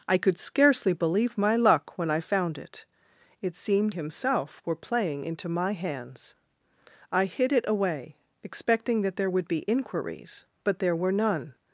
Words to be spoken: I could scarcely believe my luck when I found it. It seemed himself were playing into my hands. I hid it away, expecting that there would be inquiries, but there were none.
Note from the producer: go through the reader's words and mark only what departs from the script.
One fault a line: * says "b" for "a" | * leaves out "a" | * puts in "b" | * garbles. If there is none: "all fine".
all fine